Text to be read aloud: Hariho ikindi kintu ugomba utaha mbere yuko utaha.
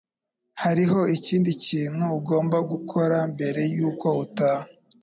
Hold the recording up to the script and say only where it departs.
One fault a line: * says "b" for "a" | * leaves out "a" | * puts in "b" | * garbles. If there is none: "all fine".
* says "gukora" for "utaha"